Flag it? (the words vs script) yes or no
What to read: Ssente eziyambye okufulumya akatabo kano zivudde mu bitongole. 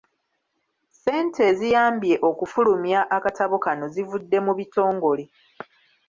no